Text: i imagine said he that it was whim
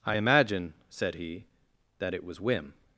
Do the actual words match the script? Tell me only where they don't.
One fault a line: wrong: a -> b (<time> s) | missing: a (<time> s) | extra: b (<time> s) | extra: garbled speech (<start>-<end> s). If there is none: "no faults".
no faults